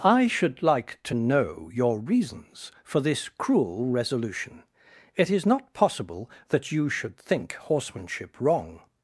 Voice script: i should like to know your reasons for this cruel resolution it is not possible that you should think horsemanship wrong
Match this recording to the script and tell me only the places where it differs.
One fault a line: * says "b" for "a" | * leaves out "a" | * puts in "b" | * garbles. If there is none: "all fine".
all fine